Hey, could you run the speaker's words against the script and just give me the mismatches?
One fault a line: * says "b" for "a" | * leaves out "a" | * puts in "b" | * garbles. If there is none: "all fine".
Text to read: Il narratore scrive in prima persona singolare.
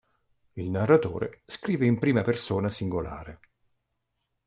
all fine